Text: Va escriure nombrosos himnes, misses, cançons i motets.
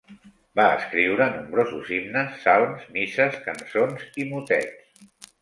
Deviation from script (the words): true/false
true